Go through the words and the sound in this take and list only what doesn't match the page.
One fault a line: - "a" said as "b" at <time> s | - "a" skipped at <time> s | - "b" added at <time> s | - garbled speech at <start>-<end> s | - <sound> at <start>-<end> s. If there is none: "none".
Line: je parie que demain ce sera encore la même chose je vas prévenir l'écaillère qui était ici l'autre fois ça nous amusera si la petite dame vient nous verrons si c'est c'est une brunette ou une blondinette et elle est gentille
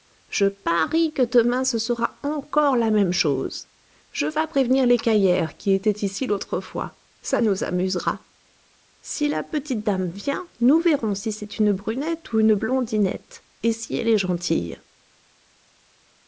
- "c'est" skipped at 11.6 s
- "si" added at 13.7 s